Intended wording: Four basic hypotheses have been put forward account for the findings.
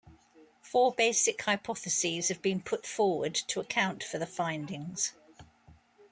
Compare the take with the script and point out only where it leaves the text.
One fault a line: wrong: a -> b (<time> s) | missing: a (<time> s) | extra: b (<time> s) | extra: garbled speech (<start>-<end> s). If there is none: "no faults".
extra: to (3.4 s)